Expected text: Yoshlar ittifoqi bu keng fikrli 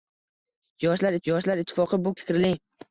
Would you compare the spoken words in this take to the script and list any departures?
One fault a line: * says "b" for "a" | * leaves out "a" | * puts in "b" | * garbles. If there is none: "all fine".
* puts in "yoshlar"
* leaves out "keng"